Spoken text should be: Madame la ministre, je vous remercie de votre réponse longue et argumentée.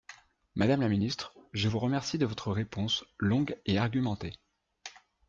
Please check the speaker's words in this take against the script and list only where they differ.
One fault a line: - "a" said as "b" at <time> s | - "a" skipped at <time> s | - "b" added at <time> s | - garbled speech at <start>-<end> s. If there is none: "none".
none